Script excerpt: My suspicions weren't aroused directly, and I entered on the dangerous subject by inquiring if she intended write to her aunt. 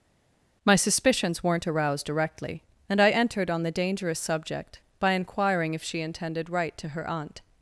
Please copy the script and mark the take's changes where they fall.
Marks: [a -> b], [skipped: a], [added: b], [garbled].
My suspicions weren't aroused directly, and I entered on the dangerous subject by inquiring if she intended write to her aunt.